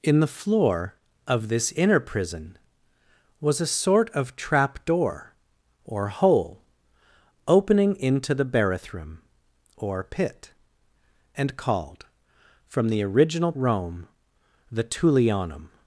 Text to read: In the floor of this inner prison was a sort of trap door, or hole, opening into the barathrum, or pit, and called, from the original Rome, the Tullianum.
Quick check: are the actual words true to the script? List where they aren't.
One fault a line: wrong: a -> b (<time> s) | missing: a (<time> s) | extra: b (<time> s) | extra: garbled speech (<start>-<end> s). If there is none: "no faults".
no faults